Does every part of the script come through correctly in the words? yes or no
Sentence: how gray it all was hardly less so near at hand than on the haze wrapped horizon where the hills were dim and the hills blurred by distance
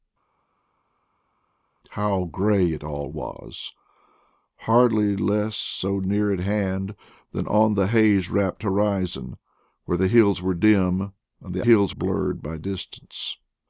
yes